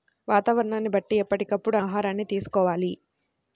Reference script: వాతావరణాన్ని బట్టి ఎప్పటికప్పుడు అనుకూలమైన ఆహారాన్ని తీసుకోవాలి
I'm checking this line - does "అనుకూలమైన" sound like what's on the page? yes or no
no